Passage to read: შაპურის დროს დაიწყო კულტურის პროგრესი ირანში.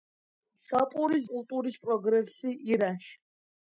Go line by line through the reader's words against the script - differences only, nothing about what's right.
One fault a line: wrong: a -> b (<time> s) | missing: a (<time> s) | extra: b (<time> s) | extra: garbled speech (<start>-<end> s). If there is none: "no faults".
missing: დროს დაიწყო (1.3 s)